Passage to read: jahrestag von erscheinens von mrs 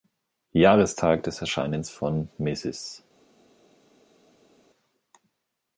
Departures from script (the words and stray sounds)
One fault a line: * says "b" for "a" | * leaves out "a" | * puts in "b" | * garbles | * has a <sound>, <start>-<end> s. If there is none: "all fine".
* says "des" for "von"